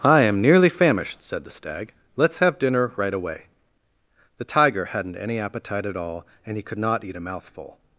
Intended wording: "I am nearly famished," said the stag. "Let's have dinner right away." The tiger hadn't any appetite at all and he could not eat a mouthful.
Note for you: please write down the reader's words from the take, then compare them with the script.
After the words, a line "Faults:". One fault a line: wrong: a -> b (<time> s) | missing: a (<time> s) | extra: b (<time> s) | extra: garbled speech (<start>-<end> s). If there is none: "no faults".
"I am nearly famished," said the stag. "Let's have dinner right away." The tiger hadn't any appetite at all and he could not eat a mouthful.
Faults:
no faults